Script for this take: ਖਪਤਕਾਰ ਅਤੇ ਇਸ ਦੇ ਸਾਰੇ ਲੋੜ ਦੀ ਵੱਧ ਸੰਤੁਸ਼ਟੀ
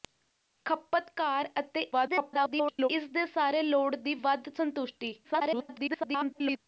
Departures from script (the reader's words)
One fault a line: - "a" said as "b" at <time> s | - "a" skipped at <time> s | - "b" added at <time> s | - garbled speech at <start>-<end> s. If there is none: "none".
- garbled speech at 1.9-2.9 s
- garbled speech at 5.2-6.6 s